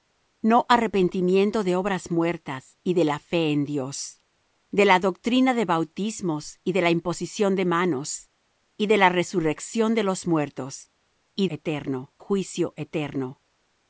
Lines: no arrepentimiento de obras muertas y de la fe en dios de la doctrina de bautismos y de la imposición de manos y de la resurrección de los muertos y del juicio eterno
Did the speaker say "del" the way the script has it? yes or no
no